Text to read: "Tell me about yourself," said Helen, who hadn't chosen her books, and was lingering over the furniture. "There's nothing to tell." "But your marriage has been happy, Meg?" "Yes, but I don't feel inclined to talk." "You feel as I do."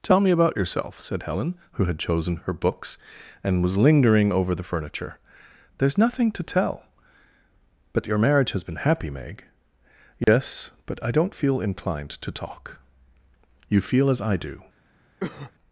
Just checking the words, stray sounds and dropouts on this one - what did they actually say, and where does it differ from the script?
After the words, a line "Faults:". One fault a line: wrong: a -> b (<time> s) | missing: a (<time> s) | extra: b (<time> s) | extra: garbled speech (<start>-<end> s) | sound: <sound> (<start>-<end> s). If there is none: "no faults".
"Tell me about yourself," said Helen, who had chosen her books, and was lingering over the furniture. "There's nothing to tell." "But your marriage has been happy, Meg?" "Yes, but I don't feel inclined to talk." "You feel as I do."
Faults:
wrong: hadn't -> had (1.9 s)
sound: dropout (10.2-10.3 s)
sound: cough (15.2-15.5 s)